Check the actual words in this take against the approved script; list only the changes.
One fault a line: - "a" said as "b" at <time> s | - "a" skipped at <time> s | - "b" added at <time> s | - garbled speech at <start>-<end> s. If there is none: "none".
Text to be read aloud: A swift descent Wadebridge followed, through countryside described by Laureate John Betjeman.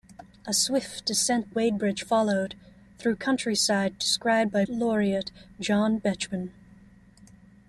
none